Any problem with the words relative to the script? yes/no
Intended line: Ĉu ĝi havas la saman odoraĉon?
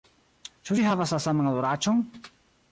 no